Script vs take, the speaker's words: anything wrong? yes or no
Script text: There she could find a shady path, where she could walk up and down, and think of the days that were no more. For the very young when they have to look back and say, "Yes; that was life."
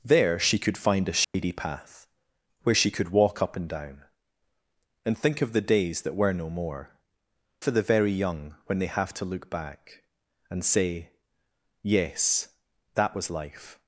no